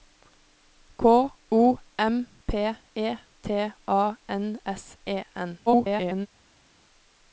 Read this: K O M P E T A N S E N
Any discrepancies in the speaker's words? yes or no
yes